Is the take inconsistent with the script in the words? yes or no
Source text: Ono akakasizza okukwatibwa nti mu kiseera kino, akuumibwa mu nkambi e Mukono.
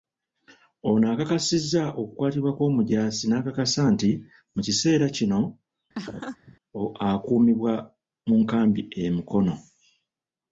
yes